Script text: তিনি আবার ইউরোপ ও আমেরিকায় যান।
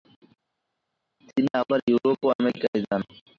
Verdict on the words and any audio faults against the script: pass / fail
pass